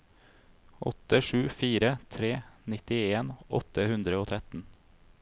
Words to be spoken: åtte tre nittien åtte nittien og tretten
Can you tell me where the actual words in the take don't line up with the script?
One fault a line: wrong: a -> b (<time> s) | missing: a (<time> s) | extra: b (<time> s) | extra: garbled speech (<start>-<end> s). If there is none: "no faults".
extra: sju fire (1.2 s)
wrong: nittien -> hundre (3.9 s)